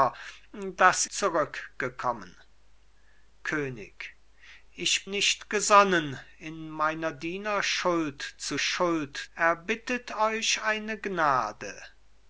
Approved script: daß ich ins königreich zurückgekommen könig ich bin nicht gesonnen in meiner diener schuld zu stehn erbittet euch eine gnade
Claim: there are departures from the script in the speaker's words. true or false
true